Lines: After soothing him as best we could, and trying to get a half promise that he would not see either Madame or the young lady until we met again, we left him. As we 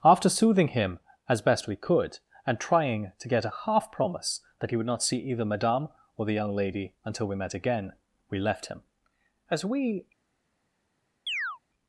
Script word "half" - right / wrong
right